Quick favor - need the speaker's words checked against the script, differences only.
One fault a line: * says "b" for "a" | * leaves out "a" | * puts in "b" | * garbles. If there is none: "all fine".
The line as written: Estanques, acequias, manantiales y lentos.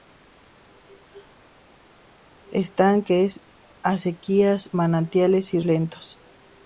all fine